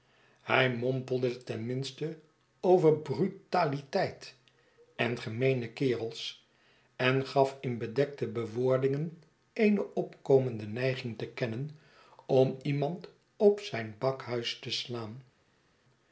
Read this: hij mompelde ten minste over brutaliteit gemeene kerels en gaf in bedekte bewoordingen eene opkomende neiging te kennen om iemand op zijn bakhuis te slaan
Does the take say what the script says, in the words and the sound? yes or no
no